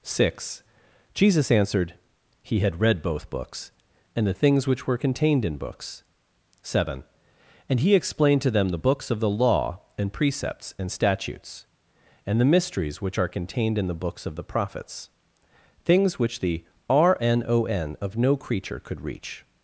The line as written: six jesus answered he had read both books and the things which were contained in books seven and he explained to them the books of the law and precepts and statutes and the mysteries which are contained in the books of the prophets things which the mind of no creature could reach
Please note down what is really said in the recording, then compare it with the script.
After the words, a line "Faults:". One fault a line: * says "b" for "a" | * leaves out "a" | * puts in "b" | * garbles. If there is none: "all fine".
six jesus answered he had read both books and the things which were contained in books seven and he explained to them the books of the law and precepts and statutes and the mysteries which are contained in the books of the prophets things which the rnon of no creature could reach
Faults:
* says "rnon" for "mind"